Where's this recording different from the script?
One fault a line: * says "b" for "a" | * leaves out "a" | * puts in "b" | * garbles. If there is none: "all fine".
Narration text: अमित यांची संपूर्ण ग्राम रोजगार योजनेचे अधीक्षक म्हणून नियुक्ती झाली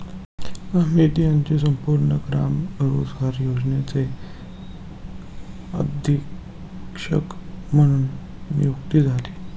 all fine